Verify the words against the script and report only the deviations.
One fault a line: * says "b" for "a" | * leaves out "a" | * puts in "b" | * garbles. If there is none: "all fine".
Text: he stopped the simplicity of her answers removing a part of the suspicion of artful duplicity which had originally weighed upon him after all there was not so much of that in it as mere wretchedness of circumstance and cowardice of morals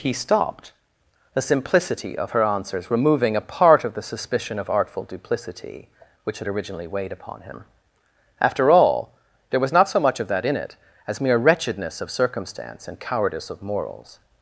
all fine